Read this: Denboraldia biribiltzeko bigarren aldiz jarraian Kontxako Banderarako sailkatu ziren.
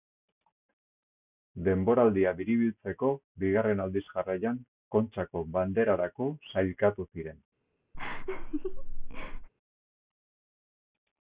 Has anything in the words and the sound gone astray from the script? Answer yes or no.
yes